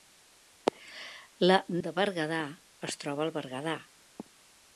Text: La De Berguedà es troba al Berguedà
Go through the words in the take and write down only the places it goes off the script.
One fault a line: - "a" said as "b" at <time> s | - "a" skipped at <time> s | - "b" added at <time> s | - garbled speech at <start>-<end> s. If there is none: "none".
none